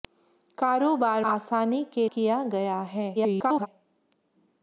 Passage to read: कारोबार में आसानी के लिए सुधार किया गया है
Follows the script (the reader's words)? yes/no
no